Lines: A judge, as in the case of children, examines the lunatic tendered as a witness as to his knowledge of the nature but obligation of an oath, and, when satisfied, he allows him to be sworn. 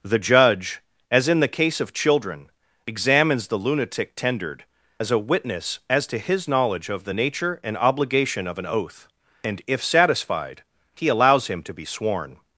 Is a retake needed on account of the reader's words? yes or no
yes